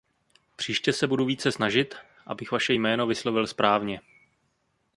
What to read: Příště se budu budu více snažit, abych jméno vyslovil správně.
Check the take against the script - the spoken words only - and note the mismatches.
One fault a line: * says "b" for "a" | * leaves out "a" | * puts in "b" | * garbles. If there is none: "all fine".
* leaves out "budu"
* puts in "vaše"